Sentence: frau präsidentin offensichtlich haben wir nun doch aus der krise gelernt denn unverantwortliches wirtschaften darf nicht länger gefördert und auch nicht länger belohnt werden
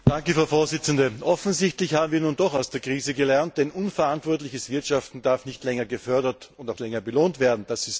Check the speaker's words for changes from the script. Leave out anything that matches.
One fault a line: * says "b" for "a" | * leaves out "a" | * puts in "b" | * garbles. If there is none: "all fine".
* leaves out "nicht"